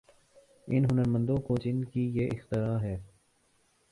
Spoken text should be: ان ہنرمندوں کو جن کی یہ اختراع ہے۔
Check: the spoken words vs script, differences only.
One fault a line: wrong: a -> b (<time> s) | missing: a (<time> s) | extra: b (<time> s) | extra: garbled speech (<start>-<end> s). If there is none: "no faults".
no faults